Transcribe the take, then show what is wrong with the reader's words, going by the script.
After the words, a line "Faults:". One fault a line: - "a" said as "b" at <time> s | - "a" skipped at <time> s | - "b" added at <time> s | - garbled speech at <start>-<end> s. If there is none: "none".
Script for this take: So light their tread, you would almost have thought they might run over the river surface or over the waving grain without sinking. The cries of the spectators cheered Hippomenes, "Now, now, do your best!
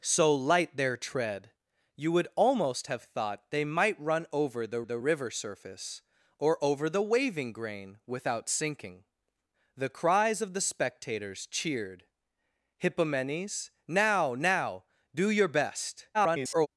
So light their tread, you would almost have thought they might run over the the river surface or over the waving grain without sinking. The cries of the spectators cheered Hippomenes, "Now, now, do your best! [garbled]
Faults:
- "the" added at 4.8 s
- garbled speech at 16.1-16.7 s